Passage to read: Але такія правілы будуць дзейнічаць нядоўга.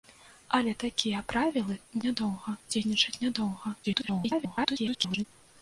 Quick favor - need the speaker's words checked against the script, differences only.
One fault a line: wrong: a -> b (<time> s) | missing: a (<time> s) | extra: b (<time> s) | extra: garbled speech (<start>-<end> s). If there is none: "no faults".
wrong: будуць -> нядоўга (2.1 s)
extra: garbled speech (3.8-5.2 s)